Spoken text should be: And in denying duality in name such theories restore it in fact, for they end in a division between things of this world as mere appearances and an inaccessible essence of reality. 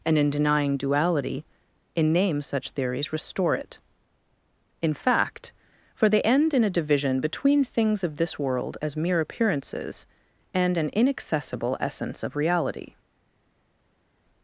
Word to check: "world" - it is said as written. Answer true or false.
true